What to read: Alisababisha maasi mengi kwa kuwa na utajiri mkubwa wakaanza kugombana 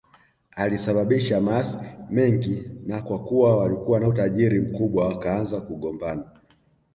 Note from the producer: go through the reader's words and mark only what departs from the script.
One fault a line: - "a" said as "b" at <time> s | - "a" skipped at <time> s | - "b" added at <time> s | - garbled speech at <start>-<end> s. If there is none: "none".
- "na" added at 2.9 s
- "walikuwa" added at 3.6 s